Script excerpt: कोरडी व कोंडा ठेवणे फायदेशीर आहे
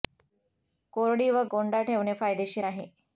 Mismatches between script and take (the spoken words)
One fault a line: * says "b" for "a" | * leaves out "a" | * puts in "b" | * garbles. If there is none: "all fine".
all fine